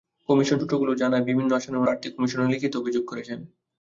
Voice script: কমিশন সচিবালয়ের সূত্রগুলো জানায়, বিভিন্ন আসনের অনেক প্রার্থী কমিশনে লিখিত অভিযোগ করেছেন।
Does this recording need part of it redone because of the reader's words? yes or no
yes